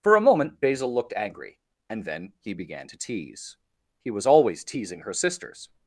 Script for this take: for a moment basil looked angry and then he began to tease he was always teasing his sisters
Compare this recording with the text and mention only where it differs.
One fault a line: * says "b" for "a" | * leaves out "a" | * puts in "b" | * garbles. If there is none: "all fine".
* says "her" for "his"